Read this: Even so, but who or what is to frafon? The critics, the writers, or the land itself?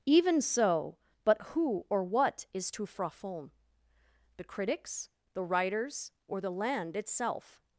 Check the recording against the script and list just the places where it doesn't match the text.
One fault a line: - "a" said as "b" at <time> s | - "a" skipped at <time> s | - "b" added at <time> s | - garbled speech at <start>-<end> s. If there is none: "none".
none